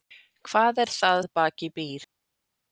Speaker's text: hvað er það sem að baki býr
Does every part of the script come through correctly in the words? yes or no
no